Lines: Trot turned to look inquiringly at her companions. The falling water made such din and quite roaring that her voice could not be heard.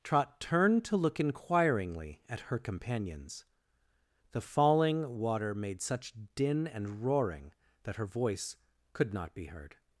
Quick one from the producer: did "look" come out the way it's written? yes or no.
yes